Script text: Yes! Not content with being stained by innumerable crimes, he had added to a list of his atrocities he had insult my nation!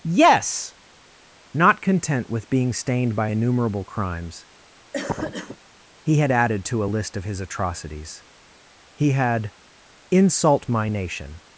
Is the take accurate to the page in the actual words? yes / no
yes